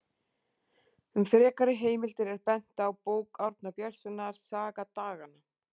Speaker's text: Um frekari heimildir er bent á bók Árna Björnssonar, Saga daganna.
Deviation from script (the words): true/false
false